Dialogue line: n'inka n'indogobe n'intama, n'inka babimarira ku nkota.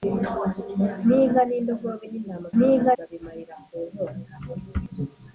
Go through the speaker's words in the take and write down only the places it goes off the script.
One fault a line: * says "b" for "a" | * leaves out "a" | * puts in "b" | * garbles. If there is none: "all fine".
all fine